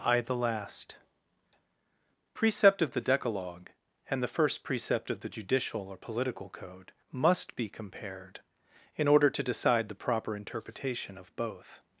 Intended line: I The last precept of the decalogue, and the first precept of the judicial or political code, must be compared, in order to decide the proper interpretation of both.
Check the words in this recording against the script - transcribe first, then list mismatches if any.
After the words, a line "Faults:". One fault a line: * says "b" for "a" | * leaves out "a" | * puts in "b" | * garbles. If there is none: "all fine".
I The last precept of the decalogue, and the first precept of the judicial or political code, must be compared, in order to decide the proper interpretation of both.
Faults:
all fine